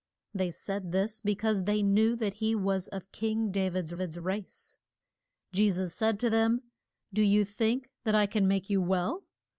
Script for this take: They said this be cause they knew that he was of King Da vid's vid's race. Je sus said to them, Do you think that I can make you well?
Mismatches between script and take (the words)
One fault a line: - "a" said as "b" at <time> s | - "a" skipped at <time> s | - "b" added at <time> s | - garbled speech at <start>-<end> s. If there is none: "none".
none